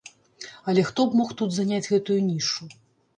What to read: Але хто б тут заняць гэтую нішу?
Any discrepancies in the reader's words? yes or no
yes